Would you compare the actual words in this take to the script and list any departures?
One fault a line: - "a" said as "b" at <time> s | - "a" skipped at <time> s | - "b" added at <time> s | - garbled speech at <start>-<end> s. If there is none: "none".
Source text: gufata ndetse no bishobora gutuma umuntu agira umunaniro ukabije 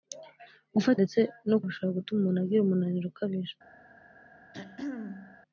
none